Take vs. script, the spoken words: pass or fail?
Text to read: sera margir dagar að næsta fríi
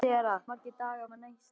pass